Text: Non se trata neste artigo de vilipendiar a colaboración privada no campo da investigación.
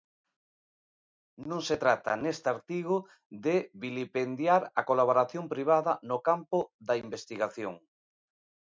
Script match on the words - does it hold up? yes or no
yes